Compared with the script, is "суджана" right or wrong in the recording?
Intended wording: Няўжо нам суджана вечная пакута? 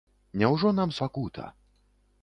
wrong